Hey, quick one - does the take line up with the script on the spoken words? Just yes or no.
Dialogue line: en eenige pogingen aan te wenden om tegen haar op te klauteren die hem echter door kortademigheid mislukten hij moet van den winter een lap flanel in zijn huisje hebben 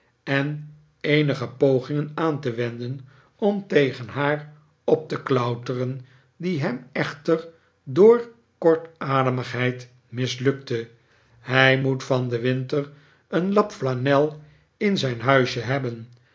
yes